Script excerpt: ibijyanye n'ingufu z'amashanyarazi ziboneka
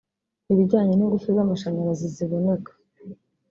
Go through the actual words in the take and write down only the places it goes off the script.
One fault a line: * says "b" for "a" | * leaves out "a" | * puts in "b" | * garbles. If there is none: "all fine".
all fine